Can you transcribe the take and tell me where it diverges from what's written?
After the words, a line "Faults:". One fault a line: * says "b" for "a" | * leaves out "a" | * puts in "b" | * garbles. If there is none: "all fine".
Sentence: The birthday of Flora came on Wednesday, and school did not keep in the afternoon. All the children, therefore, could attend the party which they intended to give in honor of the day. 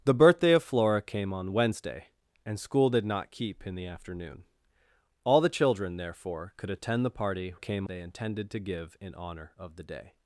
The birthday of Flora came on Wednesday, and school did not keep in the afternoon. All the children, therefore, could attend the party came they intended to give in honor of the day.
Faults:
* says "came" for "which"